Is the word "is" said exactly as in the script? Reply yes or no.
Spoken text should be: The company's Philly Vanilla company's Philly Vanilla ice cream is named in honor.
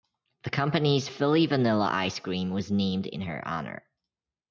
no